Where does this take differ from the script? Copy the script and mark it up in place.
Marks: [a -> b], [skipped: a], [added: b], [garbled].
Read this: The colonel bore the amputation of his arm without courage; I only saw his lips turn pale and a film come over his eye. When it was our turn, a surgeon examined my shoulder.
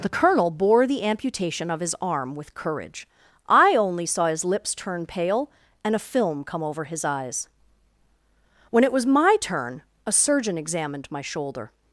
The colonel bore the amputation of his arm [without -> with] courage; I only saw his lips turn pale and a film come over his [eye. -> eyes] When it was [our -> my] turn, a surgeon examined my shoulder.